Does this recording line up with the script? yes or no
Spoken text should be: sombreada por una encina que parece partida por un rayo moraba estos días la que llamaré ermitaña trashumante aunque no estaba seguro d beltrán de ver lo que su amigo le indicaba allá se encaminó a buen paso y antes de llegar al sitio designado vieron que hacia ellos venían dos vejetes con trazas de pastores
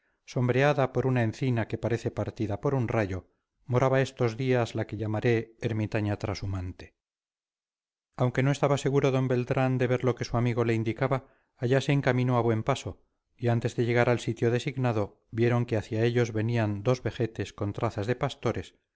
yes